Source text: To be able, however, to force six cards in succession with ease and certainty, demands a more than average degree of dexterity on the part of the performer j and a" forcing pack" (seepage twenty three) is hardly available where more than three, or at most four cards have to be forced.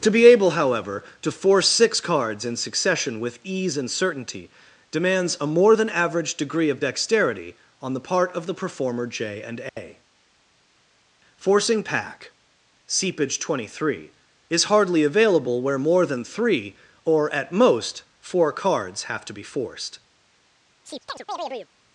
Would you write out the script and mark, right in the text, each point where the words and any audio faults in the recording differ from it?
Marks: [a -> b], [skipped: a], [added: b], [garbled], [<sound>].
To be able, however, to force six cards in succession with ease and certainty, demands a more than average degree of dexterity on the part of the performer j and a" [dropout] forcing pack" (seepage twenty three) is hardly available where more than three, or at most four cards have to be forced. [chirp]